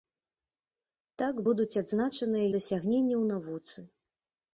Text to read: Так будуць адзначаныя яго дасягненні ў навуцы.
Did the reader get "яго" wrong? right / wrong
wrong